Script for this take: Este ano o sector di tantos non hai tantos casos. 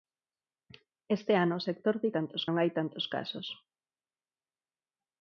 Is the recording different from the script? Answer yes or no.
no